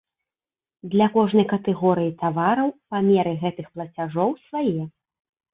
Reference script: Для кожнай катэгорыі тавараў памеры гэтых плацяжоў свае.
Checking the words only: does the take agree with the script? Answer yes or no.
yes